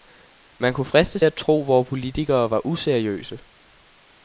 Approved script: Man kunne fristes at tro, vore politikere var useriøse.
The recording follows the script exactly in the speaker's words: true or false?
true